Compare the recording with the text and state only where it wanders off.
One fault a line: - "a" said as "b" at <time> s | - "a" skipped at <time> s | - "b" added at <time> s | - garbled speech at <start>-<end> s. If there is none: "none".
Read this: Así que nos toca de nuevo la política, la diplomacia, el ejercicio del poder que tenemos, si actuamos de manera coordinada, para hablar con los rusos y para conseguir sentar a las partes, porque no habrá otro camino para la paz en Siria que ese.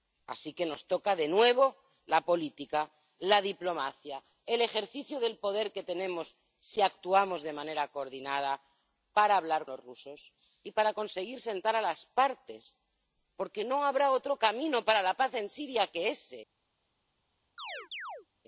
- "con" skipped at 9.7 s